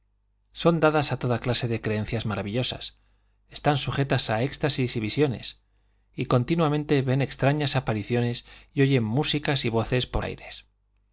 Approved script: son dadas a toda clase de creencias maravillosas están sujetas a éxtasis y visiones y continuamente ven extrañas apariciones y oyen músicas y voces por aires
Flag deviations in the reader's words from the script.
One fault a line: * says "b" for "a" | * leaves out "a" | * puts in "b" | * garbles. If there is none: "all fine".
all fine